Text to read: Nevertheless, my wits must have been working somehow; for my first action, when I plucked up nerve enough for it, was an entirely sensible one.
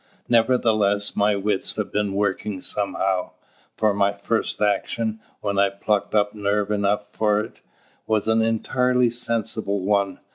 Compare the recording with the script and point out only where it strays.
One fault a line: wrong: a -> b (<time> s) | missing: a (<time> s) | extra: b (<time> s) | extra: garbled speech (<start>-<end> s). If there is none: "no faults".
missing: must (1.8 s)